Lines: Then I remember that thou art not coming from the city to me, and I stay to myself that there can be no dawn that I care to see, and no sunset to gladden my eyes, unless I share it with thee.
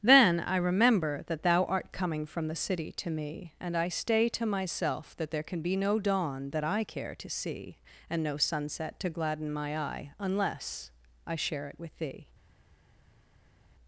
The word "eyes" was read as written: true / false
false